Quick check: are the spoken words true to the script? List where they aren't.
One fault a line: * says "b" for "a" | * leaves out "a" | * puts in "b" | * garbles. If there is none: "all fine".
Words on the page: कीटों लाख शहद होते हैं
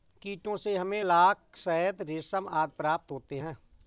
* puts in "से हमें"
* puts in "रेशम आदि प्राप्त"